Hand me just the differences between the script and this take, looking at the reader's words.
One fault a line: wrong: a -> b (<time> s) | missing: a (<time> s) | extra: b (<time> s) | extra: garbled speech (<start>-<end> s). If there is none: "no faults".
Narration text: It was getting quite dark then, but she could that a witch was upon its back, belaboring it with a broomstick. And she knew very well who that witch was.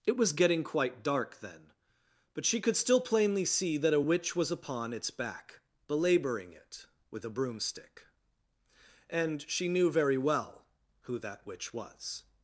extra: still plainly see (2.8 s)